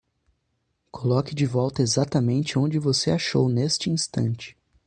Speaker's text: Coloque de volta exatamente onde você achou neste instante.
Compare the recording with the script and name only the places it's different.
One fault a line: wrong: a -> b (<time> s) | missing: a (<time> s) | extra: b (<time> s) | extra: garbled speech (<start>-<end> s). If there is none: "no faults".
no faults